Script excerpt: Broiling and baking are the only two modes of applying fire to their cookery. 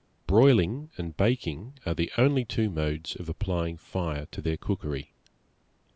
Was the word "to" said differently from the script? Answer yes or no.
no